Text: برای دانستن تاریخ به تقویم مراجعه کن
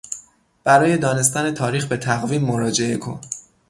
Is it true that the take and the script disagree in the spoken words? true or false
false